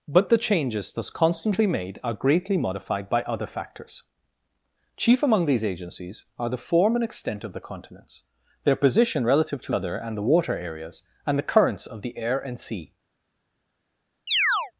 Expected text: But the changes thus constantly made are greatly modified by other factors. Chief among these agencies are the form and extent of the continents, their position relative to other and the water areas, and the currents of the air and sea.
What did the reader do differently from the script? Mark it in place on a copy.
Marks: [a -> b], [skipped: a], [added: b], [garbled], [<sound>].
But the changes thus constantly made are greatly modified by other factors. Chief among these agencies are the form and extent of the continents, their position relative to other and the water areas, and the currents of the air and sea. [chirp]